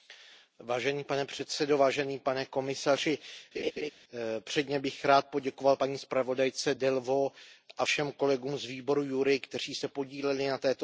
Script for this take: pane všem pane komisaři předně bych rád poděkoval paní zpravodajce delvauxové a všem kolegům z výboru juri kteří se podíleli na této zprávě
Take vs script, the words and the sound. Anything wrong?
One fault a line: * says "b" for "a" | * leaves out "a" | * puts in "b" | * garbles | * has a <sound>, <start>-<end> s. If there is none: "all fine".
* says "předsedající" for "všem"
* has a laugh, 3.5-3.9 s